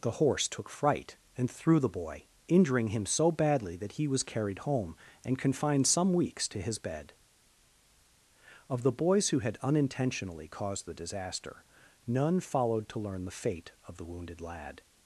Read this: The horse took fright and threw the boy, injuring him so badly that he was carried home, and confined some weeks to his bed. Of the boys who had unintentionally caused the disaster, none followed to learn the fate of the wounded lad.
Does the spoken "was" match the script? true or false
true